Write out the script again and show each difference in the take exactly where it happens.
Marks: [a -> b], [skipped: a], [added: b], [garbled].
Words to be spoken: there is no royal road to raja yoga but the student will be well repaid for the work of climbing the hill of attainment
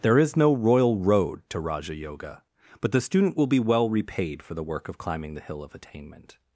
there is no royal road to raja yoga but the student will be well repaid for the work of climbing the hill of attainment